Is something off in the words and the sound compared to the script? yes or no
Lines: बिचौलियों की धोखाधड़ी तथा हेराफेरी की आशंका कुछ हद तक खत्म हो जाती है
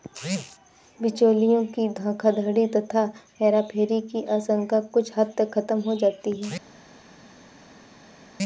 no